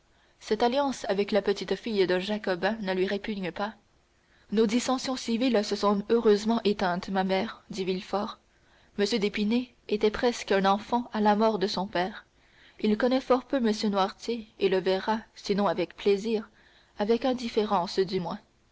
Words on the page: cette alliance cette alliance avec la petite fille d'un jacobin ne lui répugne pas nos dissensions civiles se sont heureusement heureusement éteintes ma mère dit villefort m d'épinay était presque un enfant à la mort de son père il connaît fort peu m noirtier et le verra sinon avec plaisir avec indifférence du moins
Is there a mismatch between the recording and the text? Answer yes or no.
yes